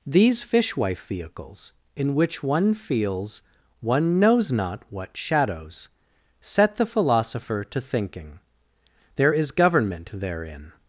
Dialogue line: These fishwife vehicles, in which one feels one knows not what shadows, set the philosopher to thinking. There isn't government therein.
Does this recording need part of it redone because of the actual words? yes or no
yes